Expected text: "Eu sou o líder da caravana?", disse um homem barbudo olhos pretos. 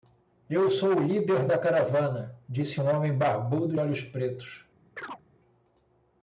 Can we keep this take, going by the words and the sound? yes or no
no